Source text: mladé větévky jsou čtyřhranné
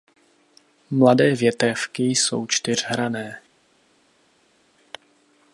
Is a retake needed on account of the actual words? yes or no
no